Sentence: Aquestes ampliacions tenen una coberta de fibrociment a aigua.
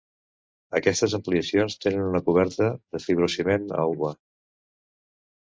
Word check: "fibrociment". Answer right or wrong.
right